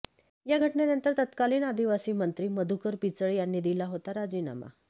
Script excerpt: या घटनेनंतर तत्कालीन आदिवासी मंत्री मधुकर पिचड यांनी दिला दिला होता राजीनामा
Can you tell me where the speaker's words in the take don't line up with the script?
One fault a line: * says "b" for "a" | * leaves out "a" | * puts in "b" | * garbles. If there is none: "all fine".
* leaves out "दिला"